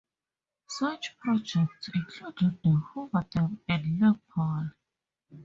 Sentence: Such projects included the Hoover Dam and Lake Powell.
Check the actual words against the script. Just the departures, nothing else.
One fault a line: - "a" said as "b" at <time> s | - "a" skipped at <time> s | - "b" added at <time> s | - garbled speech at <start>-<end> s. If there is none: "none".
none